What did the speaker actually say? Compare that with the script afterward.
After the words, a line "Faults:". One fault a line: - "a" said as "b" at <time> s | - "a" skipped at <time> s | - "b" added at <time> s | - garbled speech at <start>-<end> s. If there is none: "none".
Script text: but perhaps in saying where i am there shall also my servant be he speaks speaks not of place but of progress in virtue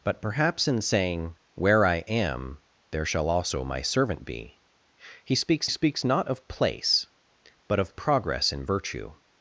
but perhaps in saying where i am there shall also my servant be he speaks speaks not of place but of progress in virtue
Faults:
none